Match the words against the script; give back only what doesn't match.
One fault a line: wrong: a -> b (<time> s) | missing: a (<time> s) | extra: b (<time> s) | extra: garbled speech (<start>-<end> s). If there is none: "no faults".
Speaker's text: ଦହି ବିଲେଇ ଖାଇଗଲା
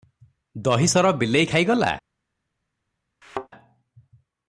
extra: ସର (0.8 s)